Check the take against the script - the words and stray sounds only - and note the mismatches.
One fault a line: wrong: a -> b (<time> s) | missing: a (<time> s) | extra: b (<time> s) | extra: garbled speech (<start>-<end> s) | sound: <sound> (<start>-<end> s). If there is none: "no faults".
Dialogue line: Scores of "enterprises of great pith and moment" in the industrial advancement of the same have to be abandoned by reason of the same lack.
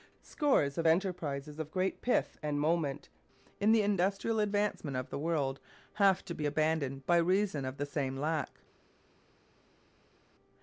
wrong: same -> world (5.2 s)